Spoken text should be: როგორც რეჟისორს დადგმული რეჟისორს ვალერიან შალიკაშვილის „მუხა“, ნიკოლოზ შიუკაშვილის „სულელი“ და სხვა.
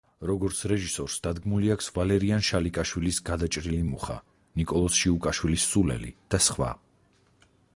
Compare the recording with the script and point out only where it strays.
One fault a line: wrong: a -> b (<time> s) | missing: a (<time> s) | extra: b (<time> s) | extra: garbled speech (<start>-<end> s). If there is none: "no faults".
wrong: რეჟისორს -> აქვს (1.7 s)
extra: გადაჭრილი (3.3 s)